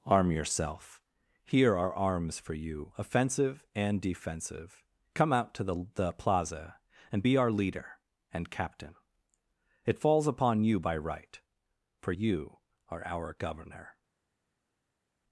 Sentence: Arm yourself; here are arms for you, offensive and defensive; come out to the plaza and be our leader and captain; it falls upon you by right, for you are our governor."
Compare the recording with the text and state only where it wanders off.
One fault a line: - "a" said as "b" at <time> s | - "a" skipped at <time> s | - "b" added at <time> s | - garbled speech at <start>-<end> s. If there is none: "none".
- "the" added at 5.9 s